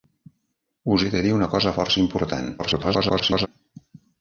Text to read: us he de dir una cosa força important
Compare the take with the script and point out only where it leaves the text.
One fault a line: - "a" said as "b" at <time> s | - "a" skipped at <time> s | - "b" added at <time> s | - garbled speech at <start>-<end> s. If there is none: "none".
- garbled speech at 2.6-3.5 s